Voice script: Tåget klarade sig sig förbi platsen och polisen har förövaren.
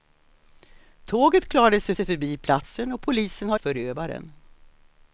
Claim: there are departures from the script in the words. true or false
false